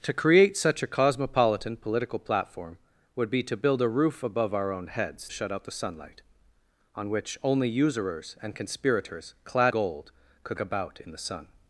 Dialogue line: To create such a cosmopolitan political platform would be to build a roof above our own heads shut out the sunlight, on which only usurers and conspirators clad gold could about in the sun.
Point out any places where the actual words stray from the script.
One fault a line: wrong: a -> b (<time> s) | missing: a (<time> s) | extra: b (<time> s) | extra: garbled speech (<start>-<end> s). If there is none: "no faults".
no faults